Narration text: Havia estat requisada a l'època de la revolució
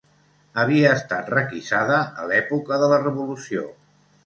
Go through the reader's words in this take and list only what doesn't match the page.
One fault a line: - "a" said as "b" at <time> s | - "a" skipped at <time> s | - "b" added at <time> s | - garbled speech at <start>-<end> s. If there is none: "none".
none